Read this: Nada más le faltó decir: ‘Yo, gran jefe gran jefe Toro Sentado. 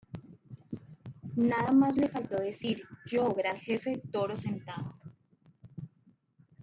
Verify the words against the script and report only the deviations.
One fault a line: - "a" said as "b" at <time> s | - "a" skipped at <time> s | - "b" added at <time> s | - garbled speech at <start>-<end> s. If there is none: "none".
- "gran jefe" skipped at 4.0 s